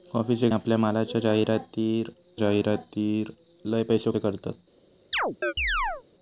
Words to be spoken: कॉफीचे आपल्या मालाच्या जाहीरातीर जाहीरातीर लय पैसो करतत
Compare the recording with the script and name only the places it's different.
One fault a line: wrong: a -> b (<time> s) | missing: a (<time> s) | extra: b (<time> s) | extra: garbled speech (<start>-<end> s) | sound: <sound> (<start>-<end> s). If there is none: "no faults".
sound: chirp (5.1-6.0 s)